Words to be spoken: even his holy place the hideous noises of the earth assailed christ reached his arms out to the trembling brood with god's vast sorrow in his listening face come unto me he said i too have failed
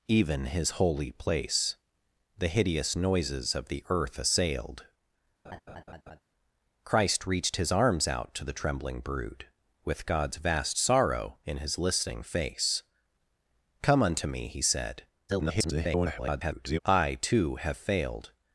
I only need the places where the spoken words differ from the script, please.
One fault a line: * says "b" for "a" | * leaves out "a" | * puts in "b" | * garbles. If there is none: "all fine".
* garbles